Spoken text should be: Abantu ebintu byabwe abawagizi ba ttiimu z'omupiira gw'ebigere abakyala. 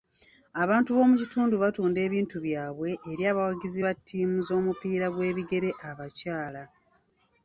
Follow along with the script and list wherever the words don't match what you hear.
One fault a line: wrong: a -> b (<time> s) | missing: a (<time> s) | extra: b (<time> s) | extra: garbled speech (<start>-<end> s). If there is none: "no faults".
extra: b'omu kitundu batunda (0.9 s)
extra: eri (3.1 s)